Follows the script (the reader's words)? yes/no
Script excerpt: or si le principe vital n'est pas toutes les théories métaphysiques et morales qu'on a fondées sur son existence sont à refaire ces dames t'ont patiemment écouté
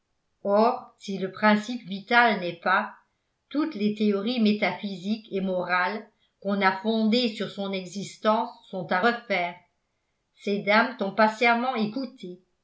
yes